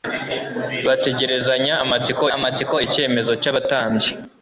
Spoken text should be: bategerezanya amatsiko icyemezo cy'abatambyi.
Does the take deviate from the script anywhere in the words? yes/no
yes